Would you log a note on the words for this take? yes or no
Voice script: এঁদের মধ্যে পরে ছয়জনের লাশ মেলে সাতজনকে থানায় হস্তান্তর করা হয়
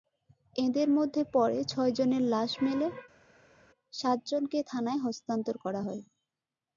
no